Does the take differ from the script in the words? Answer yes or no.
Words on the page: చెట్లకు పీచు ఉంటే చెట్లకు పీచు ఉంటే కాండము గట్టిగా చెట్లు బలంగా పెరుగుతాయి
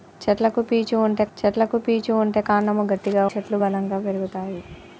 no